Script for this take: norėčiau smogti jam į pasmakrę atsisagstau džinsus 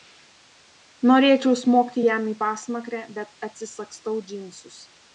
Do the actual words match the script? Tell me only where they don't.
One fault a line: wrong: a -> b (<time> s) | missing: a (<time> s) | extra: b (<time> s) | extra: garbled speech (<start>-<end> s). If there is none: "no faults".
extra: bet (3.2 s)